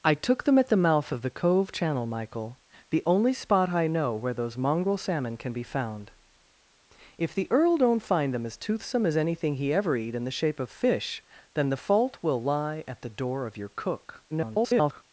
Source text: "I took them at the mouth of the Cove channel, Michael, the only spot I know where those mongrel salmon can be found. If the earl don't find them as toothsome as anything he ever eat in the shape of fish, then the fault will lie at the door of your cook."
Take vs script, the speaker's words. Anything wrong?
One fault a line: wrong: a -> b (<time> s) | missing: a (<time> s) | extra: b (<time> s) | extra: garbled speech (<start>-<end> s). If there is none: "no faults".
extra: garbled speech (14.3-15.0 s)